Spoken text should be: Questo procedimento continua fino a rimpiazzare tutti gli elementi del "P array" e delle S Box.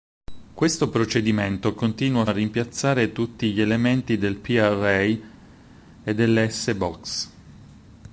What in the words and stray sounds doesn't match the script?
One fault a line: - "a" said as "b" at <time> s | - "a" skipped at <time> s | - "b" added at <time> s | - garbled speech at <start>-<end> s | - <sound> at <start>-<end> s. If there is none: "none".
- "fino" skipped at 2.2 s